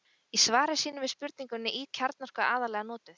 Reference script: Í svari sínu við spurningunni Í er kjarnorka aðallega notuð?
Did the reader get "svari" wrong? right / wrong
right